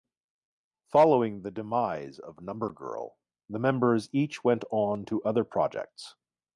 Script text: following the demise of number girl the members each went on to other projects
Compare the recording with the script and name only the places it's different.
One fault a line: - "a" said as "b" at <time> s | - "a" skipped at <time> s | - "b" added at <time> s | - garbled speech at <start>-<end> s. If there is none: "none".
none